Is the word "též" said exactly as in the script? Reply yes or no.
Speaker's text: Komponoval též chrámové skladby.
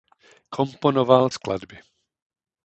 no